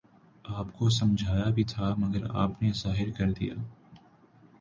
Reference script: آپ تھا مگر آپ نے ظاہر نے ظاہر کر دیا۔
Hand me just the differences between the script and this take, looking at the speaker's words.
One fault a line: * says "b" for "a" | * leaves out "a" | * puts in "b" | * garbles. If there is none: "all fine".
* puts in "کو سمجھایا بھی"
* leaves out "نے ظاہر"